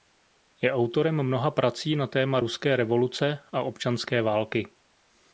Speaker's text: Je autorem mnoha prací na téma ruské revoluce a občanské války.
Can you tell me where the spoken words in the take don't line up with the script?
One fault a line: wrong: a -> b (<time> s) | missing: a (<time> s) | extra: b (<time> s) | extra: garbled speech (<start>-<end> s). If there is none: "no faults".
no faults